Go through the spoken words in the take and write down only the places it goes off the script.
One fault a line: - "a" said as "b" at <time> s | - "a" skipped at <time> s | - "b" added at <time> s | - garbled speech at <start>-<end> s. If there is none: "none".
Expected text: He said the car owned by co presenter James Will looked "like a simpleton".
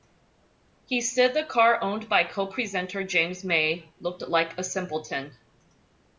- "Will" said as "May" at 3.4 s